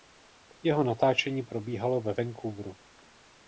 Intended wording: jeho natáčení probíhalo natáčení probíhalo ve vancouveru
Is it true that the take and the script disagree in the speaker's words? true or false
true